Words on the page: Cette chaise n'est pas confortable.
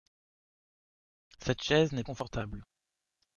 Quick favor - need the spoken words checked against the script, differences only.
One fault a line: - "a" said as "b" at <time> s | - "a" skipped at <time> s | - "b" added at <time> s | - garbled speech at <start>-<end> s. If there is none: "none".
- "pas" skipped at 2.0 s